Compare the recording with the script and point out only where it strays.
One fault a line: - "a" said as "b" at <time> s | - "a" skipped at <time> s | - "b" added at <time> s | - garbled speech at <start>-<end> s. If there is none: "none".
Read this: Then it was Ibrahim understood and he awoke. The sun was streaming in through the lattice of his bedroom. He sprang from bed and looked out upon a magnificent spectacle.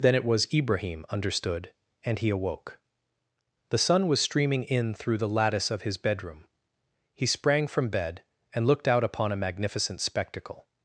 none